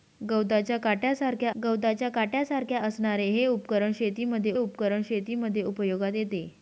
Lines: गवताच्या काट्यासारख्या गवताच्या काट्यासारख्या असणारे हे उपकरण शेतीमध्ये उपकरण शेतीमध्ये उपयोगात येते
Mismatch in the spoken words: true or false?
false